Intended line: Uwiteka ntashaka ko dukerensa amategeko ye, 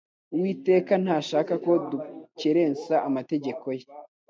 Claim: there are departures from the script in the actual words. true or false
false